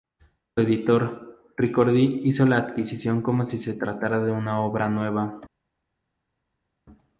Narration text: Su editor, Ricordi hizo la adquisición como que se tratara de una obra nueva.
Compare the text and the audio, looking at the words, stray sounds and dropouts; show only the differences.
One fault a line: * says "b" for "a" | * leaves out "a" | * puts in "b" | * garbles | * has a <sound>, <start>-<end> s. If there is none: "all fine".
* says "si" for "que"